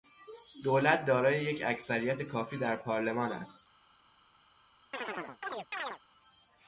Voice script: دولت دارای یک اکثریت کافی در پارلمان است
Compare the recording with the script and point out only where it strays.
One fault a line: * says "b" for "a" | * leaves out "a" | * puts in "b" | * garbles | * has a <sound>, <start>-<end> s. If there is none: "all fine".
* has a chirp, 4.9-6.0 s